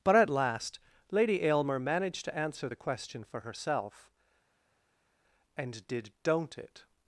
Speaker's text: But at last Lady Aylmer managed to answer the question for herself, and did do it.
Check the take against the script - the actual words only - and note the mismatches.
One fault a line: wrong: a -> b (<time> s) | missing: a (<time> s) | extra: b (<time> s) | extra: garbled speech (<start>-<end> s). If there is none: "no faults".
wrong: do -> don't (6.2 s)